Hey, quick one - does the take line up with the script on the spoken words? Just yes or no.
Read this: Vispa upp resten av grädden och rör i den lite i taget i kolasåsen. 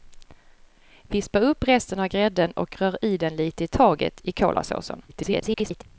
no